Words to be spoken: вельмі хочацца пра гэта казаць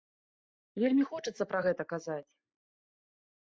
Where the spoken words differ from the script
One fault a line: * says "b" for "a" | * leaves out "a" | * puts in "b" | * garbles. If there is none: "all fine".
all fine